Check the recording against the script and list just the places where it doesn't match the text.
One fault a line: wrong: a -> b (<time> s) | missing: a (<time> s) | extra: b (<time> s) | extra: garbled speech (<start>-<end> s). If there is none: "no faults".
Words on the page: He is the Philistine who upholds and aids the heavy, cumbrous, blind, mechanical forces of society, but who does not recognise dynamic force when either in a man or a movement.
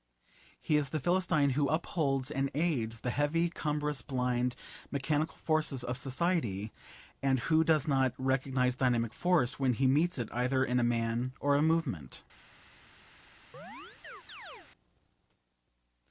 wrong: but -> and (7.2 s)
extra: he meets it (9.7 s)